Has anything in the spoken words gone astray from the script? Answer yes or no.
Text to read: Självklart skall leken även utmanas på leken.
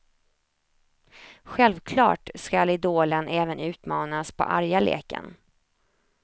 yes